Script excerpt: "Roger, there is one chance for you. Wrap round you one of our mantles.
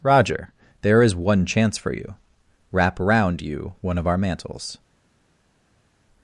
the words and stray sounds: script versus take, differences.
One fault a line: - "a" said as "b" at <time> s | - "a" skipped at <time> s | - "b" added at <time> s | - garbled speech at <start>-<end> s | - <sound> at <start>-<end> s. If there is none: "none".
- "round" said as "around" at 3.0 s